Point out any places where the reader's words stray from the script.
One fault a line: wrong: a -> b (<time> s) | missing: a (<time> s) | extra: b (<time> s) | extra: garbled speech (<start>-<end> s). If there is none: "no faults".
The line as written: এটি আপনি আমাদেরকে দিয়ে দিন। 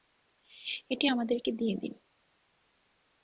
missing: আপনি (1.1 s)